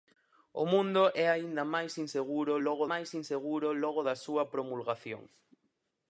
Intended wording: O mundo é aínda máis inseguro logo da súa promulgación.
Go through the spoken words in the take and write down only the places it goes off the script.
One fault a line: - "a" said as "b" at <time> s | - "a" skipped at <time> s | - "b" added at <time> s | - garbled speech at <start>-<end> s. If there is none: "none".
- "máis inseguro logo" added at 2.9 s